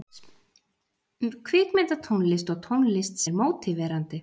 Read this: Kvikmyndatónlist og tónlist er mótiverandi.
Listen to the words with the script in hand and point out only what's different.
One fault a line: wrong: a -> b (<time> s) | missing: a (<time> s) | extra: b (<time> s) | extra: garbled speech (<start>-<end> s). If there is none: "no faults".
no faults